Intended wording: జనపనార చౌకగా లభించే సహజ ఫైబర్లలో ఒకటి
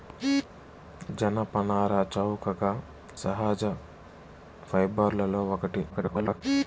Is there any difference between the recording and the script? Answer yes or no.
yes